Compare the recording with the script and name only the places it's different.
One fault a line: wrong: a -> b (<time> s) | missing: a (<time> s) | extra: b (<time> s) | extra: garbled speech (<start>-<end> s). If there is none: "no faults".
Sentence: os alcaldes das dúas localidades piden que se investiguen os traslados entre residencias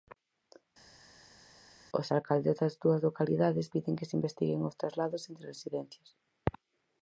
no faults